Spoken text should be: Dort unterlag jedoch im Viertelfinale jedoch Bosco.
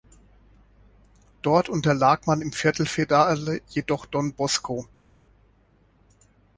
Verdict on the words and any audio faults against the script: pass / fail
fail